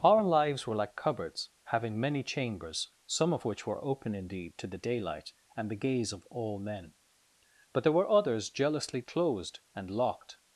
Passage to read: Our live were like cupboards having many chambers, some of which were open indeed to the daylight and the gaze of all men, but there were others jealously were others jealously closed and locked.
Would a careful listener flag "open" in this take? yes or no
no